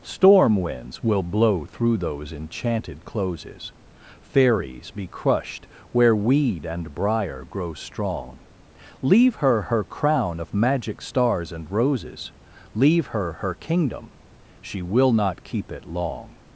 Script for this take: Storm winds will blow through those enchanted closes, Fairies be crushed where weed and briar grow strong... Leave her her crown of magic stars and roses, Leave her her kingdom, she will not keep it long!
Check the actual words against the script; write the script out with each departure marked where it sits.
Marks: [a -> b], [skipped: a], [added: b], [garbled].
Storm winds will blow through those enchanted closes, Fairies be crushed where weed and briar grow strong... Leave her her crown of magic stars and roses, Leave her her kingdom, she will not keep it long!